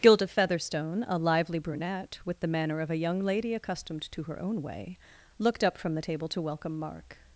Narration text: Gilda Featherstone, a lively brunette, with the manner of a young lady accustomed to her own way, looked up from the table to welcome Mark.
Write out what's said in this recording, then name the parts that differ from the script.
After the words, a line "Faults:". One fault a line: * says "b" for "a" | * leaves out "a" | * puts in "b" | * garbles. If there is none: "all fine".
Gilda Featherstone, a lively brunette, with the manner of a young lady accustomed to her own way, looked up from the table to welcome Mark.
Faults:
all fine